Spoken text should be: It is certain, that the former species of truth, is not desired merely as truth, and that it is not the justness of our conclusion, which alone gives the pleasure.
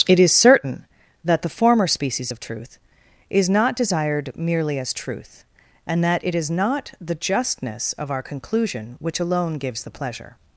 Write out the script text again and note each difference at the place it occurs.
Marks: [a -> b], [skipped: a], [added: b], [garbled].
It is certain, that the former species of truth, is not desired merely as truth, and that it is not the justness of our conclusion, which alone gives the pleasure.